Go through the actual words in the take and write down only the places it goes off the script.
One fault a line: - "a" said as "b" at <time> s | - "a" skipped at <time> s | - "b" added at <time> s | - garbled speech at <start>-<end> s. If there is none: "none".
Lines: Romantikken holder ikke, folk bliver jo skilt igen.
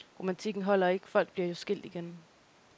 none